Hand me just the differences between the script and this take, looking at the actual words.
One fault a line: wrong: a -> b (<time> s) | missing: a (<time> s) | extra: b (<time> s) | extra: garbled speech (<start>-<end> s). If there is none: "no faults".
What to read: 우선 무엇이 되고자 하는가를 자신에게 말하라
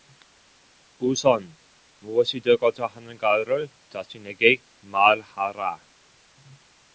no faults